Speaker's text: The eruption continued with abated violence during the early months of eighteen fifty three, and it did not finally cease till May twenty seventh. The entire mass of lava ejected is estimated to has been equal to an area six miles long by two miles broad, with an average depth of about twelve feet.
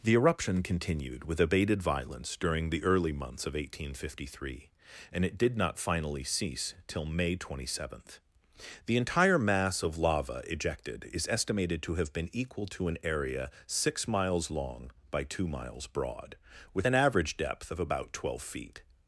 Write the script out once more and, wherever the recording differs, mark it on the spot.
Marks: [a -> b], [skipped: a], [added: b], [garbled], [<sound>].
The eruption continued with abated violence during the early months of eighteen fifty three, and it did not finally cease till May twenty seventh. The entire mass of lava ejected is estimated to [has -> have] been equal to an area six miles long by two miles broad, with an average depth of about twelve feet.